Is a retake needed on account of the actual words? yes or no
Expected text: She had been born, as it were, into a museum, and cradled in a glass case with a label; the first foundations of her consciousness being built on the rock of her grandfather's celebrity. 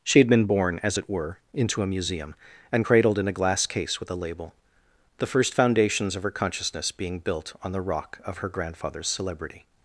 no